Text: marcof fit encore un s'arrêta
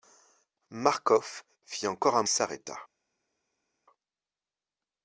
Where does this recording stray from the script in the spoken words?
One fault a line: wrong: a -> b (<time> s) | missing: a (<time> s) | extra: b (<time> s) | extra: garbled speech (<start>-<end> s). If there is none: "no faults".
no faults